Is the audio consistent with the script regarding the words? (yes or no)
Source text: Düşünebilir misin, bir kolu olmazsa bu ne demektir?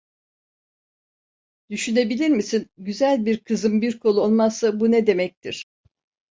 no